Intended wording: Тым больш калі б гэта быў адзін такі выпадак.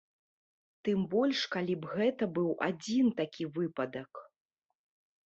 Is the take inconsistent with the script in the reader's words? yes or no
no